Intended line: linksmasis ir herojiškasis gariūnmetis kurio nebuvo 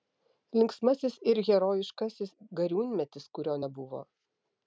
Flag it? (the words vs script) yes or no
no